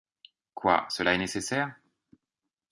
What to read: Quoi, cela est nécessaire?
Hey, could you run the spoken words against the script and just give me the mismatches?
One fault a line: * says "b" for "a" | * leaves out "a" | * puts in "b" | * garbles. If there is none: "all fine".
all fine